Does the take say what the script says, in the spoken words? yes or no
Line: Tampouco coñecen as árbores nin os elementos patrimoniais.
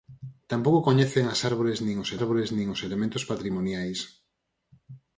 no